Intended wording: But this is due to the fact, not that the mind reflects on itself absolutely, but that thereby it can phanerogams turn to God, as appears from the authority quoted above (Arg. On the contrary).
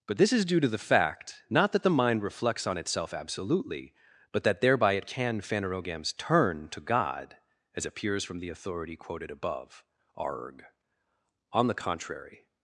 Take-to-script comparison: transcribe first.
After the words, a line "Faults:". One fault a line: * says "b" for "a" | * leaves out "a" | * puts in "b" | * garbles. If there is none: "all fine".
But this is due to the fact, not that the mind reflects on itself absolutely, but that thereby it can phanerogams turn to God, as appears from the authority quoted above (Arg. On the contrary).
Faults:
all fine